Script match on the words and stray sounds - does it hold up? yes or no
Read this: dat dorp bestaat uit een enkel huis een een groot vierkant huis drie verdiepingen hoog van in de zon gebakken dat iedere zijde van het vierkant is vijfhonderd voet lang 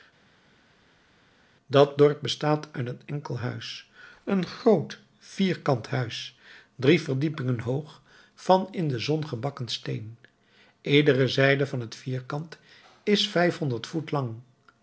no